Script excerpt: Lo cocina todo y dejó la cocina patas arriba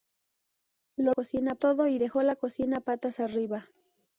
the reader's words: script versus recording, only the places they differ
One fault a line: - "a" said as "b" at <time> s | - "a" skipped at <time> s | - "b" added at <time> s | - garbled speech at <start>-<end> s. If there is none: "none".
none